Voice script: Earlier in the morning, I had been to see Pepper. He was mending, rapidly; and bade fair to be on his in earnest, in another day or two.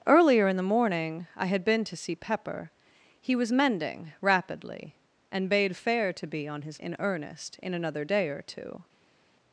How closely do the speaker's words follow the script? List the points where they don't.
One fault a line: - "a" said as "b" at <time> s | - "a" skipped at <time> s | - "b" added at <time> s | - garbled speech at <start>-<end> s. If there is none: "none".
none